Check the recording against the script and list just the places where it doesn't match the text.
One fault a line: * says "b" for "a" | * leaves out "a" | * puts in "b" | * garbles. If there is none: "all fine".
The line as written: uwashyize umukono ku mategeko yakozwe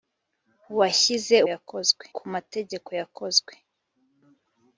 * says "yakozwe" for "umukono"